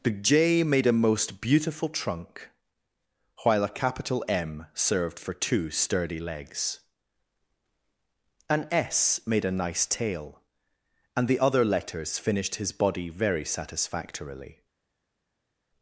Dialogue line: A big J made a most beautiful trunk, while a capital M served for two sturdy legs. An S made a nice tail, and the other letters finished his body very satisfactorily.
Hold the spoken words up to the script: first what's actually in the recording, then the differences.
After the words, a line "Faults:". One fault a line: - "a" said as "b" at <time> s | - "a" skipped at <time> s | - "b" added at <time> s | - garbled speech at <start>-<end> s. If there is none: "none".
The J made a most beautiful trunk, while a capital M served for two sturdy legs. An S made a nice tail, and the other letters finished his body very satisfactorily.
Faults:
- "A big" said as "The" at 0.0 s